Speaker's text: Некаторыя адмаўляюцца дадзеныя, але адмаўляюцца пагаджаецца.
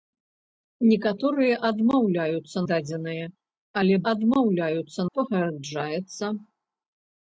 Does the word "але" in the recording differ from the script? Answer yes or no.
no